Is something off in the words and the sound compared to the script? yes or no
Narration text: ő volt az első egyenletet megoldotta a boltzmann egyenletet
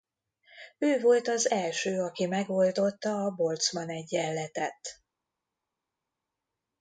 yes